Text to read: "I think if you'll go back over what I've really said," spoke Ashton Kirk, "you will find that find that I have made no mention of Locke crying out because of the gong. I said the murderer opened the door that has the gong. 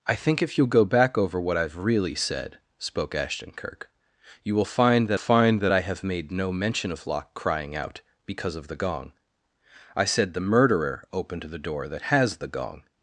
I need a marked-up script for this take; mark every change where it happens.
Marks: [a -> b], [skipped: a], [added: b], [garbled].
"I think if you'll go back over what I've really said," spoke Ashton Kirk, "you will find that find that I have made no mention of Locke crying out because of the gong. I said the murderer opened the door that has the gong.